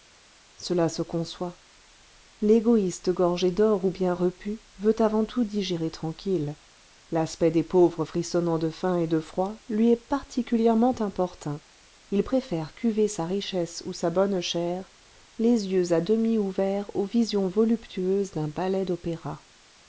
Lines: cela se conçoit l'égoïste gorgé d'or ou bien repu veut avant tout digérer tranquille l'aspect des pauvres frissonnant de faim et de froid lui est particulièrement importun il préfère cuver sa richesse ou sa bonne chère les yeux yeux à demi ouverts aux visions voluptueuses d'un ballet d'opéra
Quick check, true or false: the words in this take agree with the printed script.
false